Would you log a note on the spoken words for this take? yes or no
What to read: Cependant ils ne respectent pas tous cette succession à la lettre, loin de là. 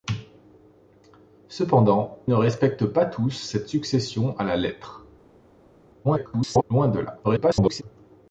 yes